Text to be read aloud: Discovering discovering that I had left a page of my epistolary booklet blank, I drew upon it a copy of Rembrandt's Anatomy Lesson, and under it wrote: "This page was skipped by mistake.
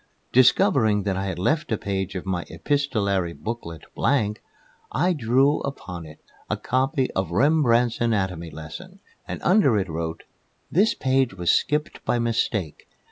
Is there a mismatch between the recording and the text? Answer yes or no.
yes